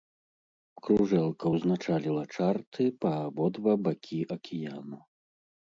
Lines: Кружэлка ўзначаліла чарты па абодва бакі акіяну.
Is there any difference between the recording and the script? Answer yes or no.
no